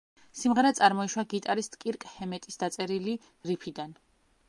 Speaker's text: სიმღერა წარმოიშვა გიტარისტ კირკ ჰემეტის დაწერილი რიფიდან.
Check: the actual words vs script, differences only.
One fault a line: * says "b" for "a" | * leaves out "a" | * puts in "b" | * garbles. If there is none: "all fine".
all fine